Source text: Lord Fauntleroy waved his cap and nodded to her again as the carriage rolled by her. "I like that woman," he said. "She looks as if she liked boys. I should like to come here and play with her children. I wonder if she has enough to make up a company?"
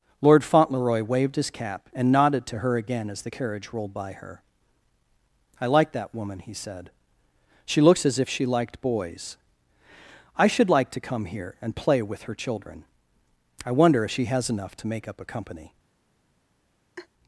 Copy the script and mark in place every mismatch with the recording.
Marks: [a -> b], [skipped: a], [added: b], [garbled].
Lord Fauntleroy waved his cap and nodded to her again as the carriage rolled by her. "I like that woman," he said. "She looks as if she liked boys. I should like to come here and play with her children. I wonder if she has enough to make up a company?"